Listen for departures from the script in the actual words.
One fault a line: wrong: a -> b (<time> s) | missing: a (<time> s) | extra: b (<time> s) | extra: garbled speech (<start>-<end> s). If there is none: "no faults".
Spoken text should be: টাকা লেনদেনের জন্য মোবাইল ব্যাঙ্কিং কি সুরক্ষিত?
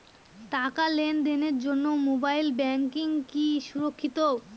no faults